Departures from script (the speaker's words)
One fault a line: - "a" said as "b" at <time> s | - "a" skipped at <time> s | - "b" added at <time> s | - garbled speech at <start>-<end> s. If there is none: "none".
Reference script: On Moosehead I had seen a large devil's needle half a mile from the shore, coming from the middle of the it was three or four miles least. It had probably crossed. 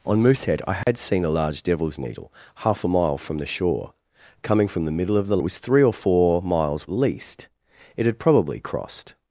none